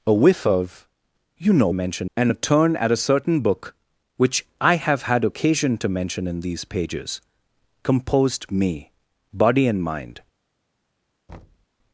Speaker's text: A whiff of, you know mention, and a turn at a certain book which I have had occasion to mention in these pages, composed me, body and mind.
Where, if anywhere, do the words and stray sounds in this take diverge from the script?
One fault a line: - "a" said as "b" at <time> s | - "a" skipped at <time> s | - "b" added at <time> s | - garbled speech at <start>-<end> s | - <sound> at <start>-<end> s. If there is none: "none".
- thud at 11.3-11.7 s